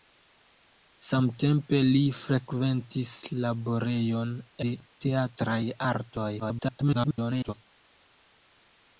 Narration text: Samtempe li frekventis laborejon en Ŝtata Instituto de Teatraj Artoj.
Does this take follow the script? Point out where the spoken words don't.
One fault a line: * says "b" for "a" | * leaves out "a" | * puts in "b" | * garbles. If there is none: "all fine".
* leaves out "en Ŝtata Instituto"
* garbles